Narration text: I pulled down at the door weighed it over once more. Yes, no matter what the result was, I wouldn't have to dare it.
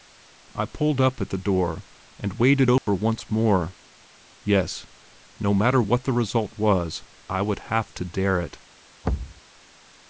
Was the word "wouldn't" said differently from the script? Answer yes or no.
yes